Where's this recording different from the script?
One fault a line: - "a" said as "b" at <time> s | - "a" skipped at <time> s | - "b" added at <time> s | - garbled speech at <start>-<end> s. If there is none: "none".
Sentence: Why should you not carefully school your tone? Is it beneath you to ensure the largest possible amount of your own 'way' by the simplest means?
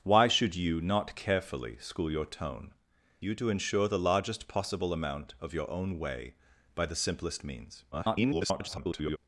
- "Is it beneath" skipped at 2.7 s
- garbled speech at 7.9-9.2 s